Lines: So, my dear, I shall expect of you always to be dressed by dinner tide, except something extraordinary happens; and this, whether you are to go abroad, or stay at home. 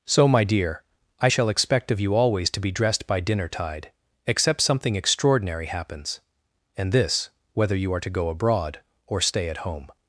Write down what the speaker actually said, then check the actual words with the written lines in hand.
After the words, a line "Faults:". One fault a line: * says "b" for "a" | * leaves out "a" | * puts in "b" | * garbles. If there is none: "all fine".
So, my dear, I shall expect of you always to be dressed by dinner tide, except something extraordinary happens; and this, whether you are to go abroad, or stay at home.
Faults:
all fine